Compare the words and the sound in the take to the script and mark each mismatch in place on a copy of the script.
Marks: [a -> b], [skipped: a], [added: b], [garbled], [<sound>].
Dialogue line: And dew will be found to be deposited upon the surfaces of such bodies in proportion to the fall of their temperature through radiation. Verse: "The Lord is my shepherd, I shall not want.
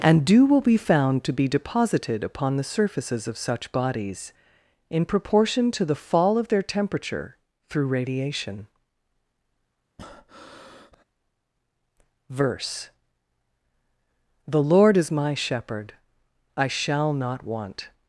And dew will be found to be deposited upon the surfaces of such bodies in proportion to the fall of their temperature through radiation. [breath] Verse: "The Lord is my shepherd, I shall not want.